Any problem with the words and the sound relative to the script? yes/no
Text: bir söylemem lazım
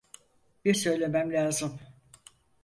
no